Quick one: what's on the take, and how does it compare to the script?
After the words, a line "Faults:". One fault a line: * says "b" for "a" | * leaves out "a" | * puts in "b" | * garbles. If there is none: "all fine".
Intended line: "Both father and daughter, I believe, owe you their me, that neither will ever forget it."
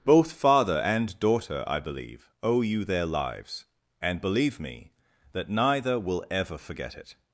"Both father and daughter, I believe, owe you their lives, and believe me, that neither will ever forget it."
Faults:
* puts in "lives and believe"